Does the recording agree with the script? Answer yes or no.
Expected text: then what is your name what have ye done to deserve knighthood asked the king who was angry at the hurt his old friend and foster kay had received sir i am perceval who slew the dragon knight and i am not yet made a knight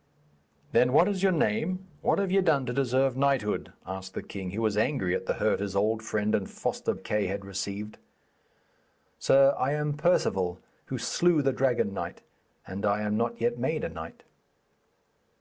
yes